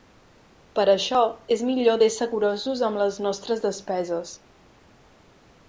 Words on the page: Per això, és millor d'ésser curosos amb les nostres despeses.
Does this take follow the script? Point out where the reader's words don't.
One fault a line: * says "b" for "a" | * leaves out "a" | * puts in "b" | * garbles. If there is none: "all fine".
all fine